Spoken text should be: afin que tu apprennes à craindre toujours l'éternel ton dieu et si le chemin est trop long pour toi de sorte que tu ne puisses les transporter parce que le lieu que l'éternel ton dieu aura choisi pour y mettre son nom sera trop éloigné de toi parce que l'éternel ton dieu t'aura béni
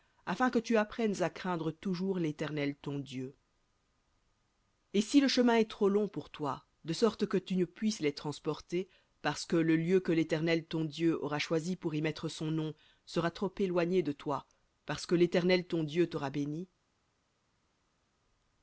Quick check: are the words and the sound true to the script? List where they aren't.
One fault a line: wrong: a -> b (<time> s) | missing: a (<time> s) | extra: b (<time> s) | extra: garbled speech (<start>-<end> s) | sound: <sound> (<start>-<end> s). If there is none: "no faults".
no faults